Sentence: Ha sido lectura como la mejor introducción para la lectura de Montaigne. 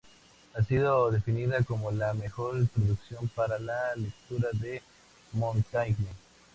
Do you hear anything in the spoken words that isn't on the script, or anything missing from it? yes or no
yes